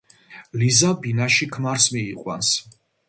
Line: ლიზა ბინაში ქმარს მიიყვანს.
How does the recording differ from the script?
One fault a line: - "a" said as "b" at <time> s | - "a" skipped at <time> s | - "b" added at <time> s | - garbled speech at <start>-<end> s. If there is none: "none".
none